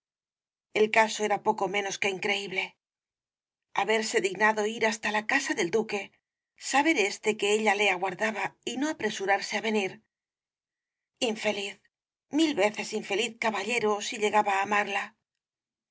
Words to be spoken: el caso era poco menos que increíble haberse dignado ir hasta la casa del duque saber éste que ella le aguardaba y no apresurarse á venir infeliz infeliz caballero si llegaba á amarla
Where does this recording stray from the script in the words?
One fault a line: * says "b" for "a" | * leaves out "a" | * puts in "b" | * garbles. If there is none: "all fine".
* puts in "mil veces"